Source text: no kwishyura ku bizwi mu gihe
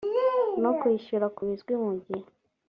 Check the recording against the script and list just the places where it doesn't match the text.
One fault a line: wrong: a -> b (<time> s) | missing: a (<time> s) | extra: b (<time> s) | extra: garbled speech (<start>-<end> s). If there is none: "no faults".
no faults